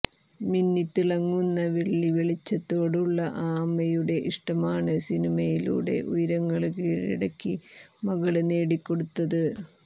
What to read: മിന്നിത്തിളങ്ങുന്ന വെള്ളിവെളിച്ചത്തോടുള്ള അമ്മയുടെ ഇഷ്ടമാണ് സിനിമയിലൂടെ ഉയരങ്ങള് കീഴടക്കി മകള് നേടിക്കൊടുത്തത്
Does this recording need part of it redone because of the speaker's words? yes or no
yes